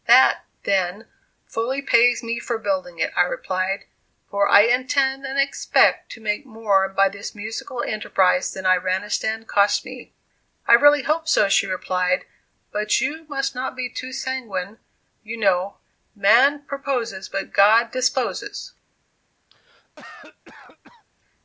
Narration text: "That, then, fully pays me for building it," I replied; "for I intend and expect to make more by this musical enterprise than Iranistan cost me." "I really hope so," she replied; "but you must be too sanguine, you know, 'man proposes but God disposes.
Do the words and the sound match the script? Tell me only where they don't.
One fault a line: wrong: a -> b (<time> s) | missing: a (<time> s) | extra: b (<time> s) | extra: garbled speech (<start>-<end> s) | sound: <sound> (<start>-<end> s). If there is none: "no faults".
extra: not (13.5 s)
sound: cough (19.5-21.1 s)